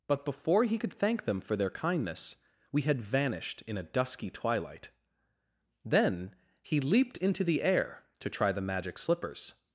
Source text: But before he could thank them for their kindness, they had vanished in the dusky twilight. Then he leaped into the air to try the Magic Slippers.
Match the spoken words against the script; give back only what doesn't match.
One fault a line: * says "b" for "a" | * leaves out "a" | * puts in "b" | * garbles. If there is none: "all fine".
* says "we" for "they"
* says "a" for "the"